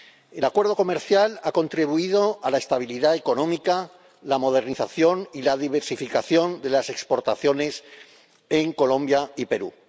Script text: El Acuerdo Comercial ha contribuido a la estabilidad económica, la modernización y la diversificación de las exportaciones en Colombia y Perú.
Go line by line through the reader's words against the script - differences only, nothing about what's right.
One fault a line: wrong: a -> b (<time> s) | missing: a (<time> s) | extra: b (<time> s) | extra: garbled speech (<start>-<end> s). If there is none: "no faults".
no faults